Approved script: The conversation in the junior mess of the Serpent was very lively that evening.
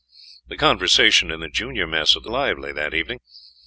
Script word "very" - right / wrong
wrong